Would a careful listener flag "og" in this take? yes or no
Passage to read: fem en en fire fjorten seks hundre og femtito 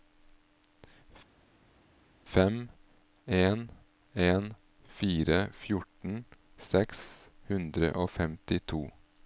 no